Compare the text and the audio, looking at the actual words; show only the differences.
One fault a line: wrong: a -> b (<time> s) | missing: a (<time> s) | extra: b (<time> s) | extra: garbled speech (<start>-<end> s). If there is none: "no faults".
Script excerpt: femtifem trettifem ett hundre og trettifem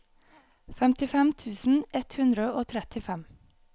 wrong: trettifem -> tusen (1.4 s)